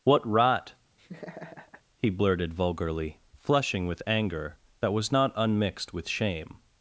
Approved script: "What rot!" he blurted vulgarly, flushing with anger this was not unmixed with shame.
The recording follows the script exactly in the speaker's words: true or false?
false